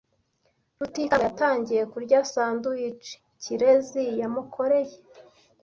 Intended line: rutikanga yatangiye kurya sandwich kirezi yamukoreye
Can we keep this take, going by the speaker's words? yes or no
yes